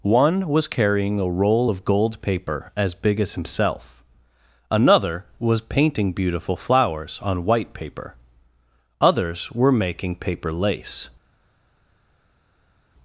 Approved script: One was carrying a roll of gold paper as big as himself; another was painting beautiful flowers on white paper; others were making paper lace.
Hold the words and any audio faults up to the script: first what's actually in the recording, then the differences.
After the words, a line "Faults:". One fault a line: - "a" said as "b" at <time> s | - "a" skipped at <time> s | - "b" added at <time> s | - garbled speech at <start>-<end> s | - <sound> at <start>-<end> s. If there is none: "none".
One was carrying a roll of gold paper as big as himself; another was painting beautiful flowers on white paper; others were making paper lace.
Faults:
none